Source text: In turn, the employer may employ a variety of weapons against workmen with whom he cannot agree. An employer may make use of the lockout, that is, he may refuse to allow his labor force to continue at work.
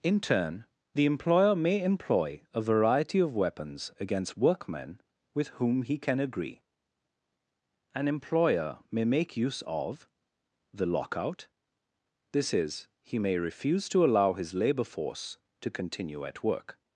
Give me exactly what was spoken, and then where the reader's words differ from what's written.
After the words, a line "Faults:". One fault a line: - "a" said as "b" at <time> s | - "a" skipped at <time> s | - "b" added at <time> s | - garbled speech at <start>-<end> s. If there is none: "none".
In turn, the employer may employ a variety of weapons against workmen with whom he can agree. An employer may make use of the lockout, this is, he may refuse to allow his labor force to continue at work.
Faults:
- "cannot" said as "can" at 6.0 s
- "that" said as "this" at 12.3 s